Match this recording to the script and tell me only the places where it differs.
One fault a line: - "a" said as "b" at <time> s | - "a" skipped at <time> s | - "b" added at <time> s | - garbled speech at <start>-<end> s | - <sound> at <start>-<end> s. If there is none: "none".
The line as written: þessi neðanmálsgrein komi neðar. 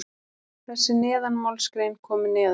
none